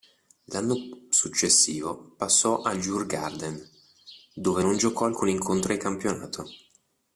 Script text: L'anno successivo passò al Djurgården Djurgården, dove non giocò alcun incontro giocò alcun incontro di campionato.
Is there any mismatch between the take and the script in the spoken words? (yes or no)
yes